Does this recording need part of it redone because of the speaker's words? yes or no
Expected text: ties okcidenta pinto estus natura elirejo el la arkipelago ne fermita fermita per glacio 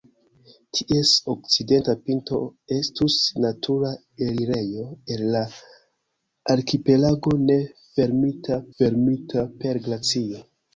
no